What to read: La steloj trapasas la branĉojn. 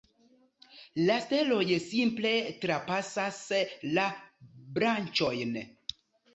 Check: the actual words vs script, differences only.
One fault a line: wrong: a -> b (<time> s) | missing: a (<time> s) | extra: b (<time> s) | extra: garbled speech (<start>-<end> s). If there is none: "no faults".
extra: simple (1.9 s)